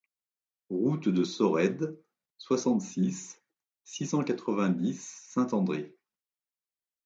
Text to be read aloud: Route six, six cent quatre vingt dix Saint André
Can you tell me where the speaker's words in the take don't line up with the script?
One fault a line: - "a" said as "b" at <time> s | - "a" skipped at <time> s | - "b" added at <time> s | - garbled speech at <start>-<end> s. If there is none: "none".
- "de Sorède soixante" added at 1.1 s